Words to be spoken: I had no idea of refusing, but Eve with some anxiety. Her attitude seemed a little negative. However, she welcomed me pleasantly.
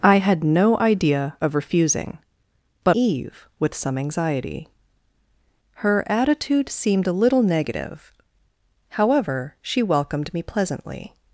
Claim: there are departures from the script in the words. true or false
false